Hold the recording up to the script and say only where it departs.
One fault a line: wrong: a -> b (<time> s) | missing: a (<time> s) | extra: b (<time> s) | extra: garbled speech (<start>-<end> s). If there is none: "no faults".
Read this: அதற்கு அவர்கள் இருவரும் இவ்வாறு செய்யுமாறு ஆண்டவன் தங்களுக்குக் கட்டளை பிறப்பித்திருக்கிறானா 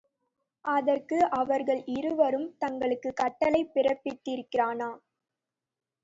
missing: இவ்வாறு செய்யுமாறு ஆண்டவன் (2.5 s)